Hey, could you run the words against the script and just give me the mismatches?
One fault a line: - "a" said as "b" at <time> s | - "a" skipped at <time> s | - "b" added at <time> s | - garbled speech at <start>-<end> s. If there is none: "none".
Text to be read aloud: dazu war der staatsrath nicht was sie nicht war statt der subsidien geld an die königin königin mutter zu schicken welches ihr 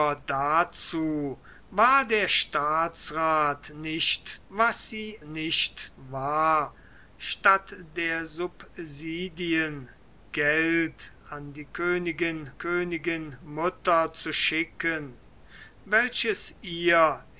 none